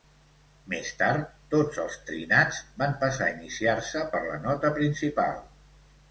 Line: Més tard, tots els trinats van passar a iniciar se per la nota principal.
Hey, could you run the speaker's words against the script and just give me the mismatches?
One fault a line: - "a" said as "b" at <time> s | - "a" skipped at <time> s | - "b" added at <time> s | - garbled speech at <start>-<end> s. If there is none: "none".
none